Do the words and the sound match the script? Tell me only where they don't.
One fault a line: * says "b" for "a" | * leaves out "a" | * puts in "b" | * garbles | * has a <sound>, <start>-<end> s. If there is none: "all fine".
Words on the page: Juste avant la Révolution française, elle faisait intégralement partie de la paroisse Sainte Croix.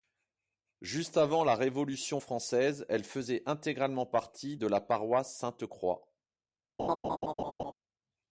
* has a laugh, 6.8-7.7 s